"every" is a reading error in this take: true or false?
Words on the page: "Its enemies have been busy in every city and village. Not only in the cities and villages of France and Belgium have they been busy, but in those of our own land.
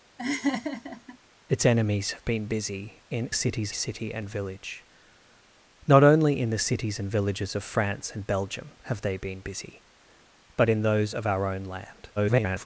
true